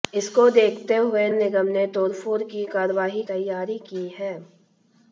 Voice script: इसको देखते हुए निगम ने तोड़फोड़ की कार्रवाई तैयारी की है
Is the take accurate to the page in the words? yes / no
yes